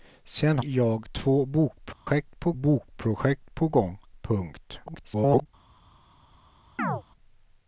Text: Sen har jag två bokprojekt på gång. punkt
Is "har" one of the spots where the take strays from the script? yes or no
yes